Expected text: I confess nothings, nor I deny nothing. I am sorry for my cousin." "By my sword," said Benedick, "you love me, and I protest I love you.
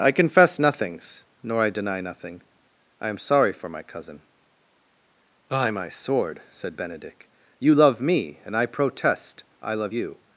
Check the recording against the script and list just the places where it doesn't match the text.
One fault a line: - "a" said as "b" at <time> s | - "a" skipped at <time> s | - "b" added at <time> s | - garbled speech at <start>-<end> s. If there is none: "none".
none